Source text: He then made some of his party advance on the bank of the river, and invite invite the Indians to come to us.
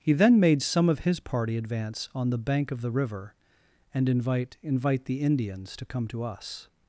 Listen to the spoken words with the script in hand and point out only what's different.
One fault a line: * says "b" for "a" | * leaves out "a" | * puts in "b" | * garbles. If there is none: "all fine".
all fine